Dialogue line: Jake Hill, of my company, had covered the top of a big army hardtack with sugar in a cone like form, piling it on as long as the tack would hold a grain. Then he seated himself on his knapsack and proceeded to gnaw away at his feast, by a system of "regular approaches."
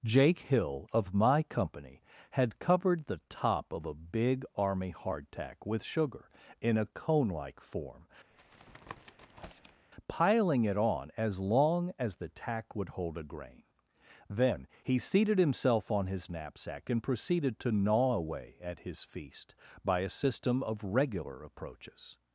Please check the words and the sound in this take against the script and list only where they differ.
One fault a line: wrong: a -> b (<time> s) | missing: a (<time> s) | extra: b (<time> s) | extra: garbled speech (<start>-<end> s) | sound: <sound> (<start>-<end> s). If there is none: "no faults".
sound: tap (8.3-9.9 s)